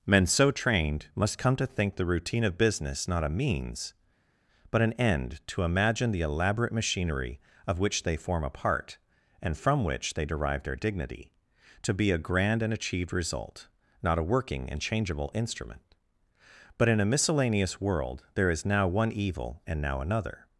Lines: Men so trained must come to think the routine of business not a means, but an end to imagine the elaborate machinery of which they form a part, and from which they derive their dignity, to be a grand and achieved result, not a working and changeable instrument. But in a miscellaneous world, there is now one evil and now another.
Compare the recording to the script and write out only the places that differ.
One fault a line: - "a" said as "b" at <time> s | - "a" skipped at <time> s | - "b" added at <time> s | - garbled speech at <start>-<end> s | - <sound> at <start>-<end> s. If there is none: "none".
none